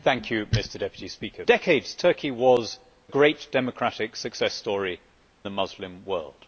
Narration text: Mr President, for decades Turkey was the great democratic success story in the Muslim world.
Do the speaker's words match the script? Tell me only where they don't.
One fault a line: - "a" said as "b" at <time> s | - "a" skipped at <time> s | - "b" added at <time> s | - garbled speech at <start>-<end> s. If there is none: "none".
- "for" skipped at 1.5 s
- "the" skipped at 2.8 s
- "in" skipped at 5.0 s